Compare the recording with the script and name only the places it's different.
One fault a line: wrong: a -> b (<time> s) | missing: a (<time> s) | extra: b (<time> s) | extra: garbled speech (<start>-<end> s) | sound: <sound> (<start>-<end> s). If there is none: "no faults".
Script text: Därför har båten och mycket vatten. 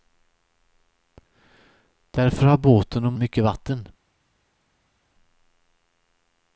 no faults